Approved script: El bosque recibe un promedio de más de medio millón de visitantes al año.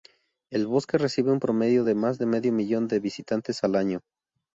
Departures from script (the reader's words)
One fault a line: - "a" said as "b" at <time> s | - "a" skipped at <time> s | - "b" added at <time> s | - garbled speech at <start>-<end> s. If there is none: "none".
none